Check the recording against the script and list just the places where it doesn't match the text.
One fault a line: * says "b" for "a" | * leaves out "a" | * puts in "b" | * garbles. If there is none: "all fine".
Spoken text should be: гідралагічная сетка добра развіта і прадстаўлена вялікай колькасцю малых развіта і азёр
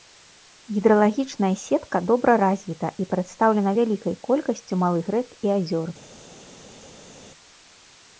* says "рэк" for "развіта"